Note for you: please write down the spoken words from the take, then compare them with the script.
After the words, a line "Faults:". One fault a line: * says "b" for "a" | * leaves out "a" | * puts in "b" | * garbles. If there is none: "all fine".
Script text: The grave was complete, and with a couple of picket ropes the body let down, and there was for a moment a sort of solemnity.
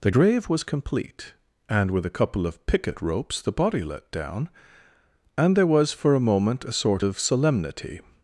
The grave was complete, and with a couple of picket ropes the body let down, and there was for a moment a sort of solemnity.
Faults:
all fine